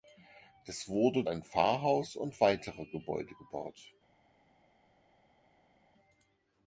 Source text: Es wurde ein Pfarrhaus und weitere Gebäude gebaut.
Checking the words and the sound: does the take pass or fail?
pass